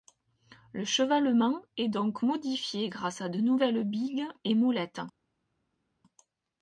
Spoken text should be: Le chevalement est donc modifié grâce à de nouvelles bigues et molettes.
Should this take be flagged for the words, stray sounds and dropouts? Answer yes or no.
no